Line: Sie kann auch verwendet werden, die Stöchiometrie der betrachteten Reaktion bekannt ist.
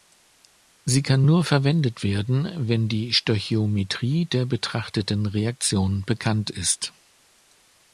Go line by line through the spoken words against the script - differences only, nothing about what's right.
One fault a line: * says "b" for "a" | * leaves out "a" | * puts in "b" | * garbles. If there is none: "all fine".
* says "nur" for "auch"
* puts in "wenn"